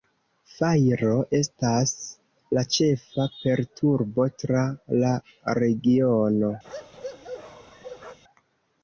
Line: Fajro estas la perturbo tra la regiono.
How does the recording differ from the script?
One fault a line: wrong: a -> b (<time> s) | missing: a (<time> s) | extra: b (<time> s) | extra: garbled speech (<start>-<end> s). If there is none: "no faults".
extra: ĉefa (2.8 s)